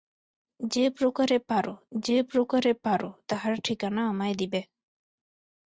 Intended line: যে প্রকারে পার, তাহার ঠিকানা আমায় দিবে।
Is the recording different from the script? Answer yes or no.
yes